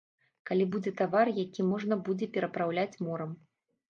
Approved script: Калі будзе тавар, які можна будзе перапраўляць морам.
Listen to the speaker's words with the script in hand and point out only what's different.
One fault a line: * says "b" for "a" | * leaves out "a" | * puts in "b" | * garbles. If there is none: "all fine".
all fine